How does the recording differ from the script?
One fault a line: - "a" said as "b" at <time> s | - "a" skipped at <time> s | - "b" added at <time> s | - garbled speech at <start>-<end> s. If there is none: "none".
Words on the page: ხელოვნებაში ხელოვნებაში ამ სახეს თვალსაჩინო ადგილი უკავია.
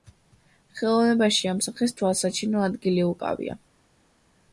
- "ხელოვნებაში" skipped at 1.5 s